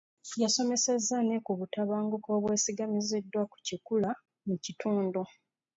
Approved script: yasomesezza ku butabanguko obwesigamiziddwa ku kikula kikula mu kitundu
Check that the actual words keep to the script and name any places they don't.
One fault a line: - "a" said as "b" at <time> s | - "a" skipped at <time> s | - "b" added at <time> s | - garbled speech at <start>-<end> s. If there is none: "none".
- "ne" added at 1.3 s
- "kikula" skipped at 4.1 s